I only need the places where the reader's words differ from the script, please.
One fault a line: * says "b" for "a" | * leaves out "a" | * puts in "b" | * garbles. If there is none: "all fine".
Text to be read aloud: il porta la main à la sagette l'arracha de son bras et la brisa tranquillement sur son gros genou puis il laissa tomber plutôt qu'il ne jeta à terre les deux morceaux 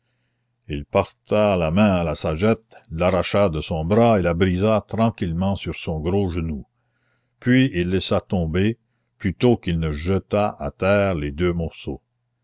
all fine